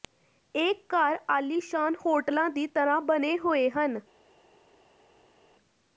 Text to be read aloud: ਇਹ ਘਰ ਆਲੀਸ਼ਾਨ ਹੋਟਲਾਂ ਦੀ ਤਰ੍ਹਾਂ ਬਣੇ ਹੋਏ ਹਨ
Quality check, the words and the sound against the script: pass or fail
pass